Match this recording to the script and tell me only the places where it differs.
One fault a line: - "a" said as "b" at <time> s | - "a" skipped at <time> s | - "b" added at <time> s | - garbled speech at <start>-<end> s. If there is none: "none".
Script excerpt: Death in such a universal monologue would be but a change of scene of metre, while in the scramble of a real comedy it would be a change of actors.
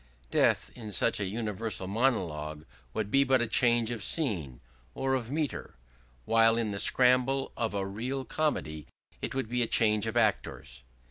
- "or" added at 5.0 s